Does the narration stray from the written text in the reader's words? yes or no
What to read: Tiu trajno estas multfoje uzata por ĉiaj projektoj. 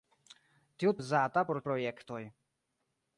yes